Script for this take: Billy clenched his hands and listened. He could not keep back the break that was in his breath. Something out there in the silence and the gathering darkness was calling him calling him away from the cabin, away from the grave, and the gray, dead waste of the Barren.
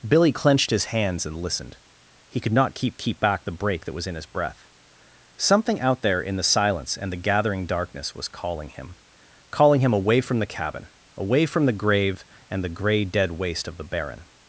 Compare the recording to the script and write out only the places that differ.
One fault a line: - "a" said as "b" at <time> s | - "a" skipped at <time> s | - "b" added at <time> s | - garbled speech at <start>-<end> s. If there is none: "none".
- "keep" added at 3.0 s